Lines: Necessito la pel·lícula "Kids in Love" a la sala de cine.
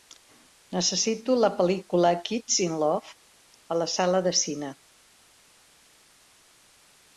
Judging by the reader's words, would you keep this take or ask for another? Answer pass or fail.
pass